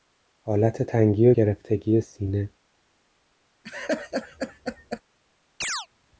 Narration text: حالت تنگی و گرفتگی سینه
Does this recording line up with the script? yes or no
yes